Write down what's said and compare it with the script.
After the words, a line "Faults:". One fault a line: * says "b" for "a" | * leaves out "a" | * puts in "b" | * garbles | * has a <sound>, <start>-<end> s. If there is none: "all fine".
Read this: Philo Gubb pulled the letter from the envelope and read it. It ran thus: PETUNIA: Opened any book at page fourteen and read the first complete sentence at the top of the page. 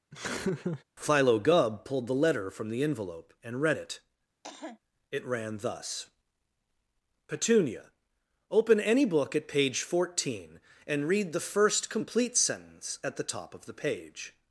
Philo Gubb pulled the letter from the envelope and read it. It ran thus: PETUNIA: Open any book at page fourteen and read the first complete sentence at the top of the page.
Faults:
* has a laugh, 0.1-0.8 s
* has a cough, 4.4-4.8 s
* says "Open" for "Opened"